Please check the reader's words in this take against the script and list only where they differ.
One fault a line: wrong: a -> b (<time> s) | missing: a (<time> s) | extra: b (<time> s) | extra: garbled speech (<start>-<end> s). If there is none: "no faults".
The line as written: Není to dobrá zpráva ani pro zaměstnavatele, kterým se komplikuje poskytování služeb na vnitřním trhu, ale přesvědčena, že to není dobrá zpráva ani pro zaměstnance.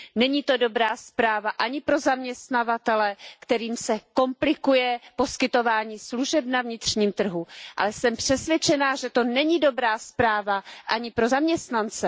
extra: jsem (7.9 s)